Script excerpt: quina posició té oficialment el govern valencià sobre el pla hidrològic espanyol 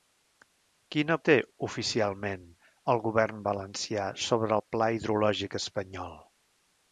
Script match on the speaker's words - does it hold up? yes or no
no